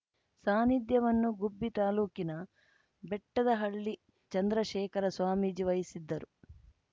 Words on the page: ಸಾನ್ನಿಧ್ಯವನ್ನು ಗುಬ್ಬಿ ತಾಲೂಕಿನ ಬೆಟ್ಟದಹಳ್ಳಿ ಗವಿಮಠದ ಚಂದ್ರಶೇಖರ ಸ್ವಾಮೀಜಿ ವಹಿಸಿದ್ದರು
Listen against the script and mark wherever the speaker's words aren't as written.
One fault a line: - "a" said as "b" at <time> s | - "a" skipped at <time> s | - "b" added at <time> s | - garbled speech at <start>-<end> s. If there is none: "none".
- "ಗವಿಮಠದ" skipped at 3.9 s